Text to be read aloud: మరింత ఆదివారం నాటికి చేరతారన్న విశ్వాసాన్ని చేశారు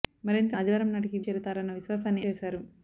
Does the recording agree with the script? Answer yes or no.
yes